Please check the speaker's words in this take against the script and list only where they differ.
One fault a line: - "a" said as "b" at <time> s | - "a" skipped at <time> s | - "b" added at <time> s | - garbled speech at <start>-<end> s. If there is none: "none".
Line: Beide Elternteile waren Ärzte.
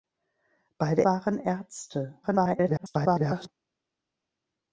- "Elternteile" skipped at 1.1 s
- garbled speech at 2.2-3.5 s